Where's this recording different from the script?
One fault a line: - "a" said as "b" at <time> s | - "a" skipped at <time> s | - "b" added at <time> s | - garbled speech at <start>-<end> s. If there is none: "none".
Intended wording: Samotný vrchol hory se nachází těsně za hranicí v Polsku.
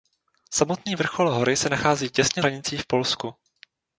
- "za" skipped at 2.4 s